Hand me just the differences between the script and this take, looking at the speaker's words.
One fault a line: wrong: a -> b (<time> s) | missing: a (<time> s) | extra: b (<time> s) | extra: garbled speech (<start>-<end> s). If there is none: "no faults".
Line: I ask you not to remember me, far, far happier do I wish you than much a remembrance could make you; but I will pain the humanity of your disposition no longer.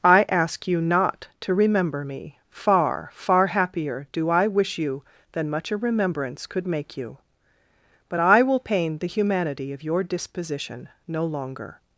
no faults